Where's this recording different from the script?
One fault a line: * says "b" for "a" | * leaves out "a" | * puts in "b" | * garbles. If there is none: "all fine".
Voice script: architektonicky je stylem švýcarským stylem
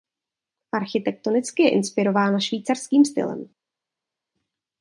* says "inspirována" for "stylem"